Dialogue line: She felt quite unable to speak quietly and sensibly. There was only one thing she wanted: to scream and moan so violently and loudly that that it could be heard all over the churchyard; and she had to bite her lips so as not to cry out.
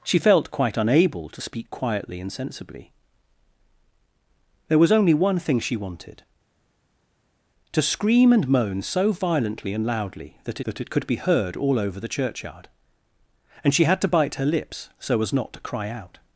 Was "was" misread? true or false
false